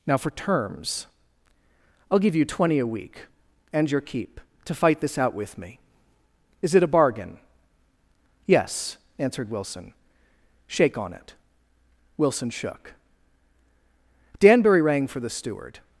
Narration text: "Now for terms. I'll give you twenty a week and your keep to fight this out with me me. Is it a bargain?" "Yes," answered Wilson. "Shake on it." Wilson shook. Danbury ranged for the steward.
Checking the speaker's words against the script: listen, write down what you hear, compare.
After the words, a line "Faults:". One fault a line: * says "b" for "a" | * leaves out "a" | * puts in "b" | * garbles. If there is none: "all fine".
"Now for terms. I'll give you twenty a week and your keep to fight this out with me. Is it a bargain?" "Yes," answered Wilson. "Shake on it." Wilson shook. Danbury rang for the steward.
Faults:
* leaves out "me"
* says "rang" for "ranged"